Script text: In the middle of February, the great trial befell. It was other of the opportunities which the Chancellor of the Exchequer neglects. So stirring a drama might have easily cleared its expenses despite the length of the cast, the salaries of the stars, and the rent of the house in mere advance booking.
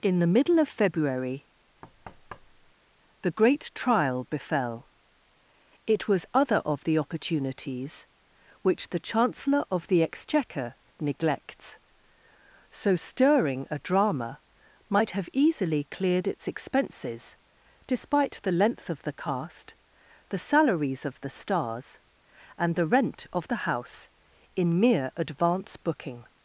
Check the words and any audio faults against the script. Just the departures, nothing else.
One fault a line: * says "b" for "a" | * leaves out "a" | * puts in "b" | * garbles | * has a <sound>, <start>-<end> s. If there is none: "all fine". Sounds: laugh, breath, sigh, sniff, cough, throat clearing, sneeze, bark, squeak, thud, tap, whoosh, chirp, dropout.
* has a thud, 1.8-2.7 s